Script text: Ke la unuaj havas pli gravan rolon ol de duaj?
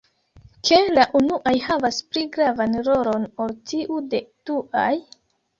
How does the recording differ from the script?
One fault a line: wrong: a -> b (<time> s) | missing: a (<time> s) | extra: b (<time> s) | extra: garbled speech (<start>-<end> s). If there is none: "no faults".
extra: tiu (3.7 s)